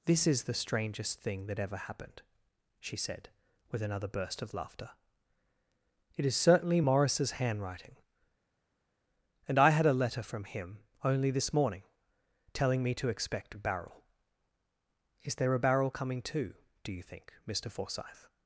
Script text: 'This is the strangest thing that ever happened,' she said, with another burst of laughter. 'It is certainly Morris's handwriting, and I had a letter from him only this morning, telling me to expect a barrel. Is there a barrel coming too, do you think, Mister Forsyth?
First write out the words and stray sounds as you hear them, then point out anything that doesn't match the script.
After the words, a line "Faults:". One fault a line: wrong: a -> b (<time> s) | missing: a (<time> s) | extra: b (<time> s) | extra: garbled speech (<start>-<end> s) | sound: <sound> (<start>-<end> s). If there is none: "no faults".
'This is the strangest thing that ever happened,' she said, with another burst of laughter. 'It is certainly Morris's handwriting, and I had a letter from him only this morning, telling me to expect a barrel. Is there a barrel coming too, do you think, Mister Forsyth?
Faults:
no faults